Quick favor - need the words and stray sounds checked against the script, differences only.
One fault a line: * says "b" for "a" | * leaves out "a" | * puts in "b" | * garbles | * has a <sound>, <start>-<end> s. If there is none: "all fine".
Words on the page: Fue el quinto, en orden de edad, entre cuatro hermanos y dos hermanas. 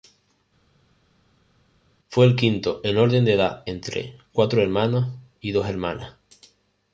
all fine